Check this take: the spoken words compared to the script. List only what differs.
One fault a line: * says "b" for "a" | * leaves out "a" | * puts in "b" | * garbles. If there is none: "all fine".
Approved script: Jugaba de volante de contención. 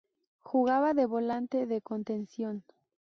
all fine